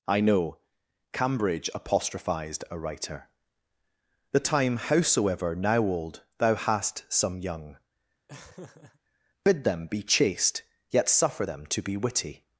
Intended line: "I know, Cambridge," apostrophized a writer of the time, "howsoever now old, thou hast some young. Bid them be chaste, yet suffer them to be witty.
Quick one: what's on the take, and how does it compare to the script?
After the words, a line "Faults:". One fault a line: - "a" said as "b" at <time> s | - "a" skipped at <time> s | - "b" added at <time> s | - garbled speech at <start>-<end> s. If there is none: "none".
"I know, Cambridge," apostrophized a writer the time, "howsoever now old, thou hast some young. Bid them be chaste, yet suffer them to be witty.
Faults:
- "of" skipped at 3.3 s